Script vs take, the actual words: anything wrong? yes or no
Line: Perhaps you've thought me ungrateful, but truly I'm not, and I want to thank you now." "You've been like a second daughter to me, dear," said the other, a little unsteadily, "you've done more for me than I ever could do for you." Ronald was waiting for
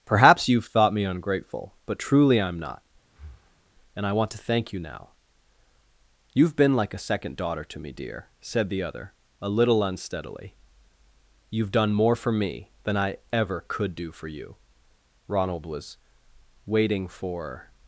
no